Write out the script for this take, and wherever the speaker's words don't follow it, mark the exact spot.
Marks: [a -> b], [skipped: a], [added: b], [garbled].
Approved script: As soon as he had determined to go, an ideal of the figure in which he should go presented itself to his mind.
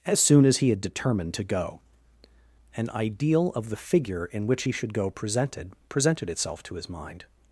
As soon as he had determined to go, an ideal of the figure in which he should go presented [added: presented] itself to his mind.